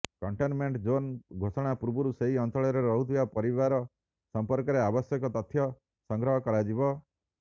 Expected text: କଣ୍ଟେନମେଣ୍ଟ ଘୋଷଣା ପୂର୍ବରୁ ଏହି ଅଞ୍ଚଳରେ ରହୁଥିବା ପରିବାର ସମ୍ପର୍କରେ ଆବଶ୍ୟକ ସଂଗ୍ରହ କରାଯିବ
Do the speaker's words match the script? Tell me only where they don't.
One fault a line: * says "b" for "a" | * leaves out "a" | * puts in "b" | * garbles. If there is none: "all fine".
* puts in "ଜୋନ୍"
* says "ସେହି" for "ଏହି"
* puts in "ତଥ୍ୟ"